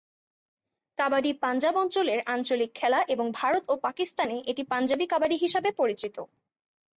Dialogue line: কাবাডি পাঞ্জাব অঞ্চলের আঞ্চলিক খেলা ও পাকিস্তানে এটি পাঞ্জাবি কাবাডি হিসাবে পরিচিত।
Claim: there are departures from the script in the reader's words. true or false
true